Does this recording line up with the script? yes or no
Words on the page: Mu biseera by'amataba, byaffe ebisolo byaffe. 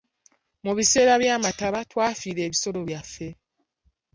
no